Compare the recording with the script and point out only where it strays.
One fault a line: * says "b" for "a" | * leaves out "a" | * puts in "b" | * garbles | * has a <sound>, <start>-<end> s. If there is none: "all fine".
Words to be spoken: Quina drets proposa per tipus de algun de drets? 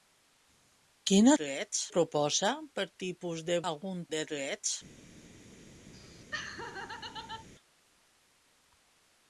* has a laugh, 5.9-7.5 s